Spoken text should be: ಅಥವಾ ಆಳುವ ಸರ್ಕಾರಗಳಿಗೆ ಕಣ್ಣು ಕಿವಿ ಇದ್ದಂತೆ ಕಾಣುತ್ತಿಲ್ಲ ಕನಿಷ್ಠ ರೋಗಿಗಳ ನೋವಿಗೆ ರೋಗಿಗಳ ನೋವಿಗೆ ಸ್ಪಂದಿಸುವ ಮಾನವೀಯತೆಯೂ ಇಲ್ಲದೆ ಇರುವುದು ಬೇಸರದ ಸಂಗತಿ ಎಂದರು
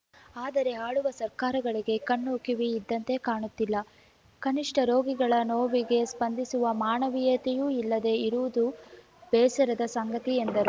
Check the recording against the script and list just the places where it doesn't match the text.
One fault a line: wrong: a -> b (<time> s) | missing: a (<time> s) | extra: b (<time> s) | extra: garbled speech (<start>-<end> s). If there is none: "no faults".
wrong: ಅಥವಾ -> ಆದರೆ (0.3 s)
missing: ರೋಗಿಗಳ ನೋವಿಗೆ (6.0 s)